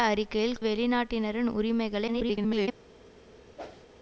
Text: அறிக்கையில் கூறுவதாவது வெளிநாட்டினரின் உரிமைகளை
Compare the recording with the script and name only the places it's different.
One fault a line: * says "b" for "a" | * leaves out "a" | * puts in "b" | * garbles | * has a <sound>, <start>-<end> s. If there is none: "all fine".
* leaves out "கூறுவதாவது"
* garbles
* has a whoosh, 3.6-3.9 s